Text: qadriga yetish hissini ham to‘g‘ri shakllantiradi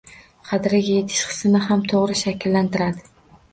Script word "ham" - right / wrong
right